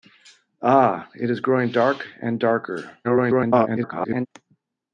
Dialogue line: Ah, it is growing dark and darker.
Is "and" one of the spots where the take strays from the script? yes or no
no